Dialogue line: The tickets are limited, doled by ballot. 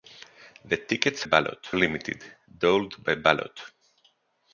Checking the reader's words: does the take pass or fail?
fail